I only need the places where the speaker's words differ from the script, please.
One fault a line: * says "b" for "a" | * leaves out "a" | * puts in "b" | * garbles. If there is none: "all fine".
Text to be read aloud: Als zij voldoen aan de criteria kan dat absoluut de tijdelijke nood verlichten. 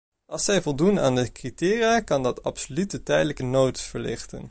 all fine